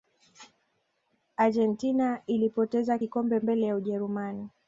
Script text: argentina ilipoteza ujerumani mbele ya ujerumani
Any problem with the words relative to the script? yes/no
yes